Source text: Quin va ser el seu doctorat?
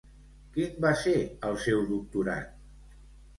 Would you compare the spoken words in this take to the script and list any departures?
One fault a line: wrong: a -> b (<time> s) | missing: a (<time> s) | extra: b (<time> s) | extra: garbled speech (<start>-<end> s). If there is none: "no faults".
no faults